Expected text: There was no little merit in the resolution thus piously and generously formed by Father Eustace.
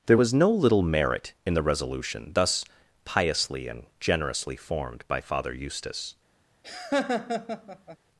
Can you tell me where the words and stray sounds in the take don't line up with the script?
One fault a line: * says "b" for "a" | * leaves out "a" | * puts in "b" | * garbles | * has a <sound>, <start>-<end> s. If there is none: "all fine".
* has a laugh, 6.6-8.0 s